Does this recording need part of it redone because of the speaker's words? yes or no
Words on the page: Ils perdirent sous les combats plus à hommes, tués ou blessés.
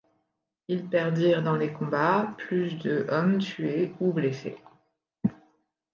yes